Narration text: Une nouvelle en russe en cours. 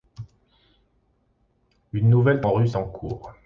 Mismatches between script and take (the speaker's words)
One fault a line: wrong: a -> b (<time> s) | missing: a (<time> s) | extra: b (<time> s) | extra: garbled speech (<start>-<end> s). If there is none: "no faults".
no faults